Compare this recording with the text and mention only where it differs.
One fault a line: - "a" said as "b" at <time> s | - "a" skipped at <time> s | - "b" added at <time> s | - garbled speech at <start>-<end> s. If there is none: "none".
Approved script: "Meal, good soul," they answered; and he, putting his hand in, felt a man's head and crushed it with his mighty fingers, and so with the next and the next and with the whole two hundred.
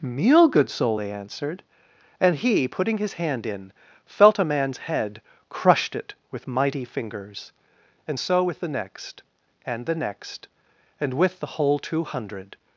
- "and" skipped at 5.2 s
- "his" skipped at 6.5 s